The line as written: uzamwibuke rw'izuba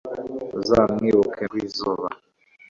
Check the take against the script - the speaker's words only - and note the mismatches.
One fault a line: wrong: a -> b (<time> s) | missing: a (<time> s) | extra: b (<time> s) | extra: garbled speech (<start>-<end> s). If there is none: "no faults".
no faults